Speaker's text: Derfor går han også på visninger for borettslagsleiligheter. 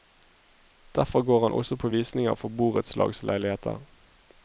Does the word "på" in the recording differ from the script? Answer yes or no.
no